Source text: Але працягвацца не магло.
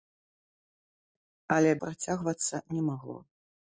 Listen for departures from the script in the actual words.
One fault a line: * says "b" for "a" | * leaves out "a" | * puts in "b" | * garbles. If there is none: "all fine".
all fine